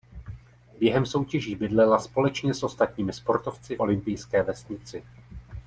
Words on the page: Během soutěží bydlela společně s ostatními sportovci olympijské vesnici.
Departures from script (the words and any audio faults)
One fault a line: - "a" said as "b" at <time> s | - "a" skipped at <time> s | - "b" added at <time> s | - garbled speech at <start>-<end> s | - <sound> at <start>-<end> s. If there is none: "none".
none